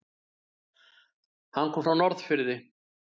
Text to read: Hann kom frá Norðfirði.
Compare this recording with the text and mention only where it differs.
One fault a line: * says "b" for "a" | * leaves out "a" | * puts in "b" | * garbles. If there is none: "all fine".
all fine